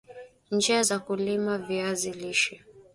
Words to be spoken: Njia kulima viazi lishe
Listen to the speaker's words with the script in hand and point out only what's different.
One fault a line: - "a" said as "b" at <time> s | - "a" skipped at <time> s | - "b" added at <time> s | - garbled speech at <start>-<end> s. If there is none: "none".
- "za" added at 0.8 s